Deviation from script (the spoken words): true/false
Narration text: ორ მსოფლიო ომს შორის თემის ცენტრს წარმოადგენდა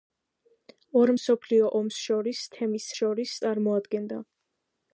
true